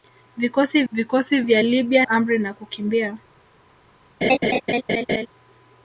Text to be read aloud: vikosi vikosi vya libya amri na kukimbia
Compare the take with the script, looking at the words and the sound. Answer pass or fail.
fail